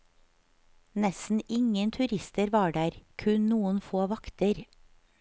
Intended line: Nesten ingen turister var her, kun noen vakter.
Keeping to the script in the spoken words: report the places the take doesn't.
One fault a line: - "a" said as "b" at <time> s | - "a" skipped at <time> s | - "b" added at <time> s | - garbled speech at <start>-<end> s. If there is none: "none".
- "her" said as "der" at 2.8 s
- "få" added at 3.8 s